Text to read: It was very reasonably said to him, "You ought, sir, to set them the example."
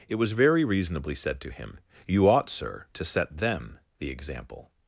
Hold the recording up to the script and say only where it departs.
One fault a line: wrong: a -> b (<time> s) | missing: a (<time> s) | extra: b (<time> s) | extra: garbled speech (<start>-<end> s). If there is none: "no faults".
no faults